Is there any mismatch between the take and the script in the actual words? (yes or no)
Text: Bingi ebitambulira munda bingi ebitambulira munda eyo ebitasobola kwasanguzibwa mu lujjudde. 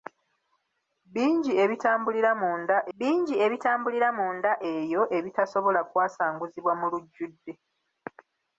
no